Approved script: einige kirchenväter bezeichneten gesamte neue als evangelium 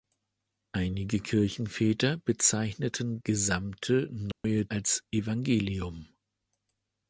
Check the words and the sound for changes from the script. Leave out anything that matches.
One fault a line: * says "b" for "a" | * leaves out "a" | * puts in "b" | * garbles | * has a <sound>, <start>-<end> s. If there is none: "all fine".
* has a dropout, 4.3-4.4 s